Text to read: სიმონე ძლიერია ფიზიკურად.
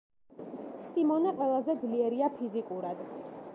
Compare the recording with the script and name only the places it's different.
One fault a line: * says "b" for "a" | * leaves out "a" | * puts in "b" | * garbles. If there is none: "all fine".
* puts in "ყველაზე"